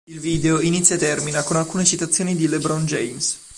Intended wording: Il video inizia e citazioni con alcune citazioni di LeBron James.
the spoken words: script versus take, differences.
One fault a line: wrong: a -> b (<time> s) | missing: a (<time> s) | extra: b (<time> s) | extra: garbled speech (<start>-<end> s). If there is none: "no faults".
wrong: citazioni -> termina (1.0 s)